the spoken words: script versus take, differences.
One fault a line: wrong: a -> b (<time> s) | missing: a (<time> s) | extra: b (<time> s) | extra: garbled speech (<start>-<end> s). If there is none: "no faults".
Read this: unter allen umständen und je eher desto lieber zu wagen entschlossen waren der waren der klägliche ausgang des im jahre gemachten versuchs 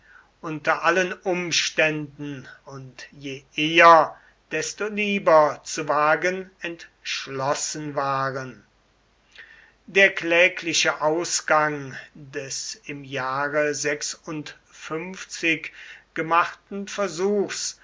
missing: waren der (10.1 s)